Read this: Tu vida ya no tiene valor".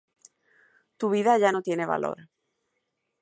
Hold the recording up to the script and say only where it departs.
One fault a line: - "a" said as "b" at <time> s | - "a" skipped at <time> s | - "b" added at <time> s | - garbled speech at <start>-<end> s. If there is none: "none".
none